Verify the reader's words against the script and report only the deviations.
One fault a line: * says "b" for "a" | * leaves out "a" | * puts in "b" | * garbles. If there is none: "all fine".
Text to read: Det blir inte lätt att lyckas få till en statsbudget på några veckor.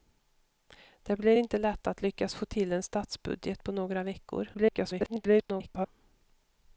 * garbles